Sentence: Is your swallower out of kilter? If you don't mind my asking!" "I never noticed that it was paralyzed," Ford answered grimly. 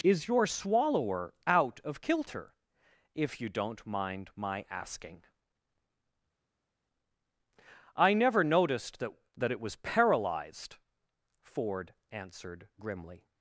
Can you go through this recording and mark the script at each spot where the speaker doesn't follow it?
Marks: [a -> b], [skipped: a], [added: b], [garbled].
Is your swallower out of kilter? If you don't mind my asking!" "I never noticed that [added: that] it was paralyzed," Ford answered grimly.